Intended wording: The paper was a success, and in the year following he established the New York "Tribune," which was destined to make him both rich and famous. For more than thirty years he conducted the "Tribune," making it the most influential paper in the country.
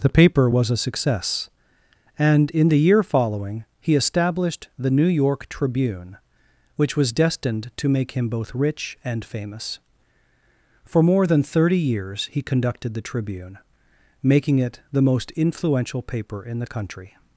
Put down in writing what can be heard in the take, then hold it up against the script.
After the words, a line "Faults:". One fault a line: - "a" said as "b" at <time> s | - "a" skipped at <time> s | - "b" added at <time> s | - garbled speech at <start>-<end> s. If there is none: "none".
The paper was a success, and in the year following he established the New York "Tribune," which was destined to make him both rich and famous. For more than thirty years he conducted the "Tribune," making it the most influential paper in the country.
Faults:
none